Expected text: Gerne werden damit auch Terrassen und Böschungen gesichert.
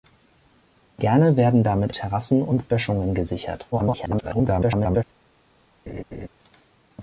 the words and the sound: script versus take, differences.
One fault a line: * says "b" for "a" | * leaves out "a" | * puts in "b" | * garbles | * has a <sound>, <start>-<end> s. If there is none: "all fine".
* leaves out "auch"
* garbles
* has a laugh, 5.9-6.3 s